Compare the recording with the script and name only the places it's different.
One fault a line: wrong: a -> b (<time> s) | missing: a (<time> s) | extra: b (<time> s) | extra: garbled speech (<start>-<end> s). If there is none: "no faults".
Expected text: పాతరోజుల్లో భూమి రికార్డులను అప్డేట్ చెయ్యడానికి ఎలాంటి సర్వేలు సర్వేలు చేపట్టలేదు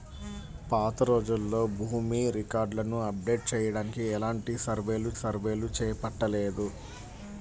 no faults